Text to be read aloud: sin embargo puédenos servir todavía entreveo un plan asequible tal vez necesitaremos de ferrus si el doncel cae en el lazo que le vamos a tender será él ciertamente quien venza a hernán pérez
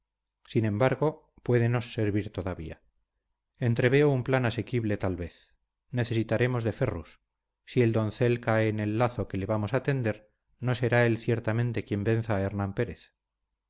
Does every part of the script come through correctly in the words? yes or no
no